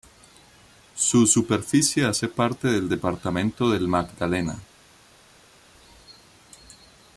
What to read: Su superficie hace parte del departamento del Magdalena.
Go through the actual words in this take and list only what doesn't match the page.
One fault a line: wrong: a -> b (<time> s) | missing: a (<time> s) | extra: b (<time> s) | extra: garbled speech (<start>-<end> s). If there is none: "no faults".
no faults